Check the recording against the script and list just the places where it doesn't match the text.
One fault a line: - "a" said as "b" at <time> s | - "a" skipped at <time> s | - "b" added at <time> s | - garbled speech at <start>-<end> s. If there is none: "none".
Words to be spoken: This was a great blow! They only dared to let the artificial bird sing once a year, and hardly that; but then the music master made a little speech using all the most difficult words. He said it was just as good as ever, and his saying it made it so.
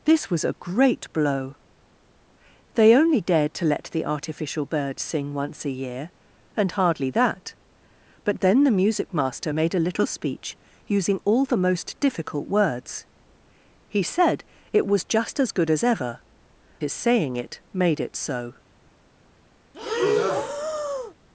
- "and" skipped at 16.2 s